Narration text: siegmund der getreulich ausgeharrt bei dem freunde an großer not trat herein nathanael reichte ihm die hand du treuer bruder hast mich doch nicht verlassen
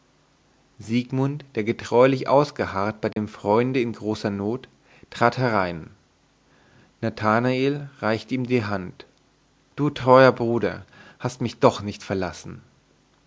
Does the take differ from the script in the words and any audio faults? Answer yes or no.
yes